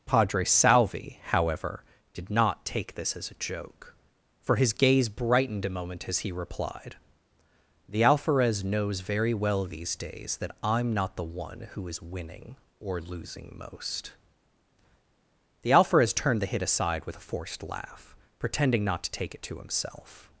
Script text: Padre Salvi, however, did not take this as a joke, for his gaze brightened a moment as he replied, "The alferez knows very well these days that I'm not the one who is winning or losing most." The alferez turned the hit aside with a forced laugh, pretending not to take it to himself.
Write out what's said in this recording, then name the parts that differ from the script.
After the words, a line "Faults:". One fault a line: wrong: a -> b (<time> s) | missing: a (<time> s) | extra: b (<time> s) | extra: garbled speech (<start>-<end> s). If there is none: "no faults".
Padre Salvi, however, did not take this as a joke, for his gaze brightened a moment as he replied, "The alferez knows very well these days that I'm not the one who is winning or losing most." The alferez turned the hit aside with a forced laugh, pretending not to take it to himself.
Faults:
no faults